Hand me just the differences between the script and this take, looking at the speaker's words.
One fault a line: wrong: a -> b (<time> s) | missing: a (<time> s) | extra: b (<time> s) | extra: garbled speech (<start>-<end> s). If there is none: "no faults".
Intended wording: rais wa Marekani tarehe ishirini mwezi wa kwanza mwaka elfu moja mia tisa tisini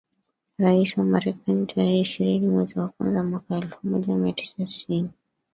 no faults